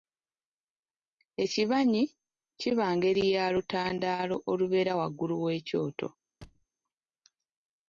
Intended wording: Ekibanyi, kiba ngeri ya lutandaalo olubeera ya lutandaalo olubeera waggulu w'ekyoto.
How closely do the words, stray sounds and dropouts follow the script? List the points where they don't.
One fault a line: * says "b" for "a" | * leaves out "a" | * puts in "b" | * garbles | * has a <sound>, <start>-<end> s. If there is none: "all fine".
* leaves out "ya lutandaalo olubeera"
* has a thud, 6.4-6.7 s